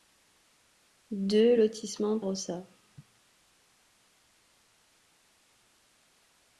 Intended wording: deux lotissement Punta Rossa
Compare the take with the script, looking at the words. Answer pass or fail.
fail